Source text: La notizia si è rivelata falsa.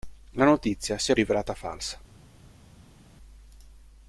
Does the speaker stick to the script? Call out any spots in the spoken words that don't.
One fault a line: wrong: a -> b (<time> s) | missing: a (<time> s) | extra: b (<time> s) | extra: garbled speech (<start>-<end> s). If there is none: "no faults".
no faults